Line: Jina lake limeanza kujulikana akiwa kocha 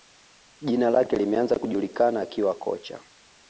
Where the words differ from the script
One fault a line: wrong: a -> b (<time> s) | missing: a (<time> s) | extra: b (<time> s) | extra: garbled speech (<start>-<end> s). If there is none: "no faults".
no faults